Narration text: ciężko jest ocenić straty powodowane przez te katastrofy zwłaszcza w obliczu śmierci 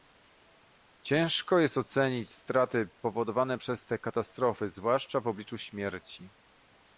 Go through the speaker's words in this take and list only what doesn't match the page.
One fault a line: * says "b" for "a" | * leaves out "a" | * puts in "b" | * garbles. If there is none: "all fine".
all fine